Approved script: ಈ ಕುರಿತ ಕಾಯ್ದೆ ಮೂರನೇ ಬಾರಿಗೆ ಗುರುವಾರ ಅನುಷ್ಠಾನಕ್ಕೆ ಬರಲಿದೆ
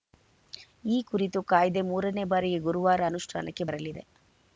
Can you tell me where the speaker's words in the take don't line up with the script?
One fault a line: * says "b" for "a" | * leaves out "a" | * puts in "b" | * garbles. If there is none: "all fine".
all fine